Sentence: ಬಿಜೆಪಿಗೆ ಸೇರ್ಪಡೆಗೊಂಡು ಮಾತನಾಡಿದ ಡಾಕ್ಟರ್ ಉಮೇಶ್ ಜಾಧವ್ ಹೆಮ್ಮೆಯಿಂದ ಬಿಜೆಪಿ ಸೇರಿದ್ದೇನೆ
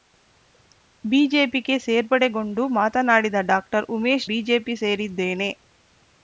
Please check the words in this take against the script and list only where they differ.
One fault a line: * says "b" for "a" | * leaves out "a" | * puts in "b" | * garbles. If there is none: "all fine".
* leaves out "ಜಾಧವ್ ಹೆಮ್ಮೆಯಿಂದ"